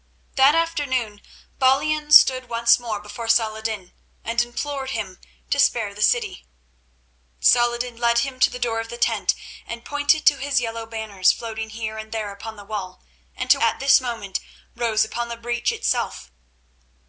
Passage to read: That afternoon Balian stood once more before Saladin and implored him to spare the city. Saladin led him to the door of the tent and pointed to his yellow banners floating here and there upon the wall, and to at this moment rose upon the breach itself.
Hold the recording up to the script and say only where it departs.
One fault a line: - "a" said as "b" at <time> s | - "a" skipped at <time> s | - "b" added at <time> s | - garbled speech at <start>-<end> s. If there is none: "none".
none